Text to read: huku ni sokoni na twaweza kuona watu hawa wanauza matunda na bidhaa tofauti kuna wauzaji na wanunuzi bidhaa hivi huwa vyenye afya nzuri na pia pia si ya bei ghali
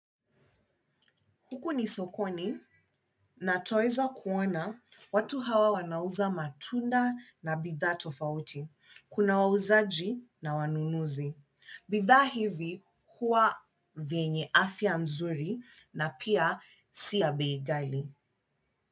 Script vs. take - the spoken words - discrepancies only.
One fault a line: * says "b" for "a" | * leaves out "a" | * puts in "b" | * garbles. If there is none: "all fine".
* leaves out "pia"